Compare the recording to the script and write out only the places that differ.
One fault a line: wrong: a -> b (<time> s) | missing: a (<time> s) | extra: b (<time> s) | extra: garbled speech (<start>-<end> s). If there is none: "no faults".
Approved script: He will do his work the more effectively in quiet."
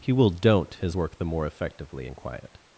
wrong: do -> don't (0.3 s)